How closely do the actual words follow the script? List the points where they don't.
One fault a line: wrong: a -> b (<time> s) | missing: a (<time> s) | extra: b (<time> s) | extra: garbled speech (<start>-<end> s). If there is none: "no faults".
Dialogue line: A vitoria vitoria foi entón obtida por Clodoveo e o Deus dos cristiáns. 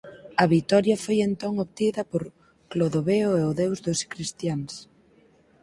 missing: vitoria (1.0 s)